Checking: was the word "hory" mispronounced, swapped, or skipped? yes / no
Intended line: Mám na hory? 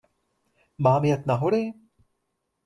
no